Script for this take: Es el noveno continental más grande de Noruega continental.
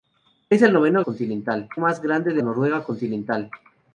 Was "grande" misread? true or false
false